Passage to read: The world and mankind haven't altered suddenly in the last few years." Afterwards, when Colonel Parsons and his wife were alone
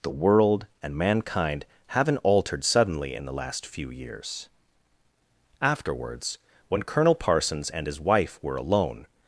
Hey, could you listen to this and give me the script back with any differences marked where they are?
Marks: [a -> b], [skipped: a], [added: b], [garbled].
The world and mankind haven't altered suddenly in the last few years." Afterwards, when Colonel Parsons and his wife were alone